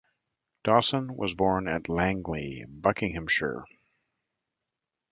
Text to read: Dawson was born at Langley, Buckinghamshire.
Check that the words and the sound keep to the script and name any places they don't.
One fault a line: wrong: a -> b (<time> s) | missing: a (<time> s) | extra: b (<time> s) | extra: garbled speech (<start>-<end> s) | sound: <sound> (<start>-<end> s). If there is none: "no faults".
no faults